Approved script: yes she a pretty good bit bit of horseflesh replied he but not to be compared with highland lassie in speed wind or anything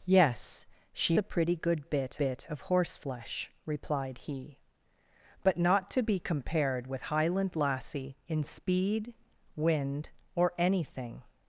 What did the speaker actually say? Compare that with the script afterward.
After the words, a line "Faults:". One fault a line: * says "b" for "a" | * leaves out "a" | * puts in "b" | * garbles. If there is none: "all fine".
yes she a pretty good bit bit of horseflesh replied he but not to be compared with highland lassie in speed wind or anything
Faults:
all fine